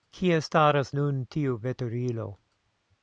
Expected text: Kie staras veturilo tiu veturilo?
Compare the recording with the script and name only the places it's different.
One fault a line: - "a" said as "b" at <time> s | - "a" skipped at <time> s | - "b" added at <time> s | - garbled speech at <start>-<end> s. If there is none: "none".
- "veturilo" said as "nun" at 1.0 s